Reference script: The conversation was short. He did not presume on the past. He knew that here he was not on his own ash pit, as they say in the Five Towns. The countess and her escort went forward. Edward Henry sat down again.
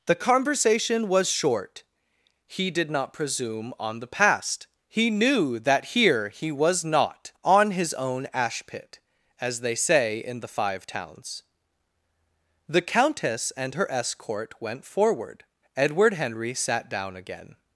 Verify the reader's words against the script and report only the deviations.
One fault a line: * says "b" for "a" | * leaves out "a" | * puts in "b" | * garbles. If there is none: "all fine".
all fine